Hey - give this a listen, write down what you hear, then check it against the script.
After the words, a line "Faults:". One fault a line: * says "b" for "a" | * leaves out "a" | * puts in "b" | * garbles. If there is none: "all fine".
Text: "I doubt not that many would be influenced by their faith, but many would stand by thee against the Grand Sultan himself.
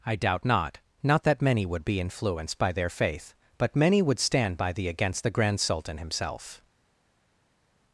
"I doubt not not that many would be influenced by their faith, but many would stand by thee against the Grand Sultan himself.
Faults:
* puts in "not"